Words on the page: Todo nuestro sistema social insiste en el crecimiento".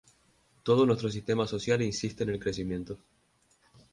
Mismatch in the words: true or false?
false